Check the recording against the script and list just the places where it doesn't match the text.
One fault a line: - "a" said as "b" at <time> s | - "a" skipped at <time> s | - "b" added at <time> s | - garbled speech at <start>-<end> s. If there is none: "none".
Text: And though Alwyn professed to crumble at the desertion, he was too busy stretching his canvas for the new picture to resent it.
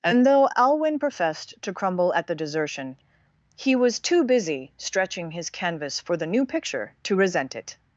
none